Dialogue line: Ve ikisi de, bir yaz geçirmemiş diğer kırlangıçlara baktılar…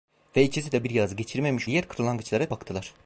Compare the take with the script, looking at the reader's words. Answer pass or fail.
pass